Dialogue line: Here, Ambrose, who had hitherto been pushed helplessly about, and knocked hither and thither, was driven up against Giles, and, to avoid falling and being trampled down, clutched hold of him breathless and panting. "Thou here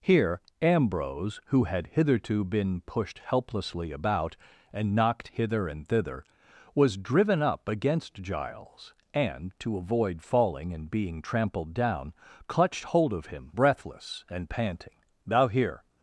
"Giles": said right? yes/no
yes